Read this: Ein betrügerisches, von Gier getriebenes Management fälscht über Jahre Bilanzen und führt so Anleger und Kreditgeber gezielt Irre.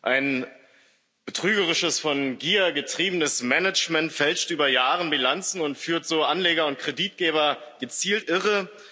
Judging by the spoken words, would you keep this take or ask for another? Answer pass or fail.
pass